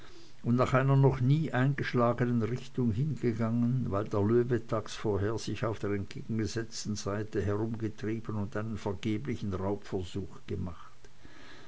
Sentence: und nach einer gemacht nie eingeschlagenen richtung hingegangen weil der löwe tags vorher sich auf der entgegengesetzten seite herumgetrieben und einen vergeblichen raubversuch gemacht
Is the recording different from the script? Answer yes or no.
yes